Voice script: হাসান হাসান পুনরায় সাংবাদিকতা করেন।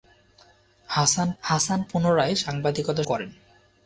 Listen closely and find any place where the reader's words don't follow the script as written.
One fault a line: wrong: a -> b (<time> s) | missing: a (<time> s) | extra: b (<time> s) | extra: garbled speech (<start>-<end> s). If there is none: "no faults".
no faults